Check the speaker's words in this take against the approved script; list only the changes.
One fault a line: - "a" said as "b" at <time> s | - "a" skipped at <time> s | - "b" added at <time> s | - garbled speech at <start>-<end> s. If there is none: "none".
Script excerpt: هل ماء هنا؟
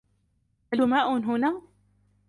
none